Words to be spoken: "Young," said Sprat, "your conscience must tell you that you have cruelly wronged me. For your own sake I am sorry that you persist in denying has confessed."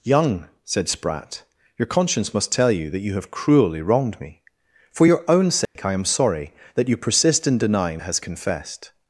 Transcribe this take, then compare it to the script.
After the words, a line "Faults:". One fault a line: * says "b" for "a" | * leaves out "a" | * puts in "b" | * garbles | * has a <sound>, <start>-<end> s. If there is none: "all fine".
"Young," said Sprat, "your conscience must tell you that you have cruelly wronged me. For your own sake I am sorry that you persist in denying has confessed."
Faults:
* has a dropout, 5.7-5.8 s